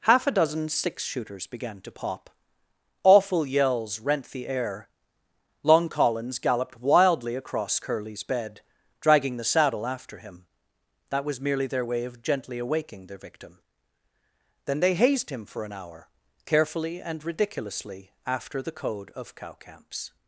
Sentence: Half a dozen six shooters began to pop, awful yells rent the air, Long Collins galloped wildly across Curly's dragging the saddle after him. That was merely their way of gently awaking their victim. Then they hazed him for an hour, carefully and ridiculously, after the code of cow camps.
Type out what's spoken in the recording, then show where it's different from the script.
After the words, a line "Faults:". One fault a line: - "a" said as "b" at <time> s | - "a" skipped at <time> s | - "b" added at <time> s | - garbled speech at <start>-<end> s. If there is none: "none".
Half a dozen six shooters began to pop, awful yells rent the air, Long Collins galloped wildly across Curly's bed, dragging the saddle after him. That was merely their way of gently awaking their victim. Then they hazed him for an hour, carefully and ridiculously, after the code of cow camps.
Faults:
- "bed" added at 8.2 s